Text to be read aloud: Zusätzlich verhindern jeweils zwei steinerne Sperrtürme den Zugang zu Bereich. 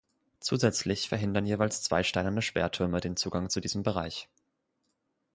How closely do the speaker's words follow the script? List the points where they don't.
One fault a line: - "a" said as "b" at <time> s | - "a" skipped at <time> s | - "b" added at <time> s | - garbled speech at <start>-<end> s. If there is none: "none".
- "diesem" added at 3.6 s